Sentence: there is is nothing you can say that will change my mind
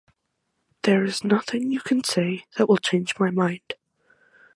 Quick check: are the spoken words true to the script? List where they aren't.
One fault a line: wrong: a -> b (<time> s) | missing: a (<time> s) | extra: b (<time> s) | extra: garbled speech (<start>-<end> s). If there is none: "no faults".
missing: is (1.2 s)